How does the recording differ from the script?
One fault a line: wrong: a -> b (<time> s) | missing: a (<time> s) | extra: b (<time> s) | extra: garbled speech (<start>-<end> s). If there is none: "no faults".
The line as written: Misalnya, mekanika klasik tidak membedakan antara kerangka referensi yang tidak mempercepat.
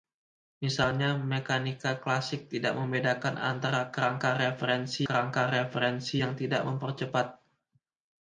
extra: kerangka referensi (5.1 s)